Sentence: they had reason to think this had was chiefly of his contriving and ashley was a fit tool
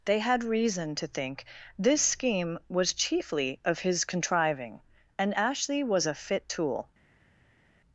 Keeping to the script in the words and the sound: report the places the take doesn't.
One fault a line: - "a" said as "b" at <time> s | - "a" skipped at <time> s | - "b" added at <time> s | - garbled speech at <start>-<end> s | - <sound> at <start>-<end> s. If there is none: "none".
- "had" said as "scheme" at 2.0 s